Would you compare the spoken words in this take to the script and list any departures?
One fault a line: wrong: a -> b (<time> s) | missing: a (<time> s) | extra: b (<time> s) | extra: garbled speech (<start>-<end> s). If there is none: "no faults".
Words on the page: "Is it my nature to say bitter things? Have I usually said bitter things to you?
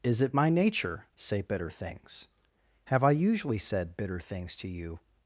missing: to (1.1 s)